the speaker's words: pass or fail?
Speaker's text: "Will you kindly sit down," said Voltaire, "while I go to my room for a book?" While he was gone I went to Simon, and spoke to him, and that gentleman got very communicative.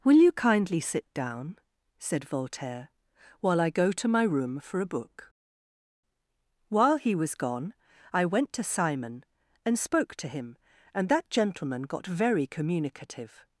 pass